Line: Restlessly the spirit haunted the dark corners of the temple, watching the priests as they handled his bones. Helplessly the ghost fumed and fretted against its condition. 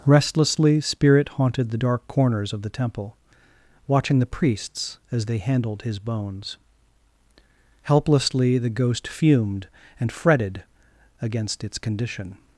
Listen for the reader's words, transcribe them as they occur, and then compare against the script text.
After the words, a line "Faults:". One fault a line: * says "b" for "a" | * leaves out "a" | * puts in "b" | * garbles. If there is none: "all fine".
Restlessly spirit haunted the dark corners of the temple, watching the priests as they handled his bones. Helplessly the ghost fumed and fretted against its condition.
Faults:
* leaves out "the"